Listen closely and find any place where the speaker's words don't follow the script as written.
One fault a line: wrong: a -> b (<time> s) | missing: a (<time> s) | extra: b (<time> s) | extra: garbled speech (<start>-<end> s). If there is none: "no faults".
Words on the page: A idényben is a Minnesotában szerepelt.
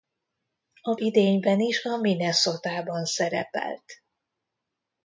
no faults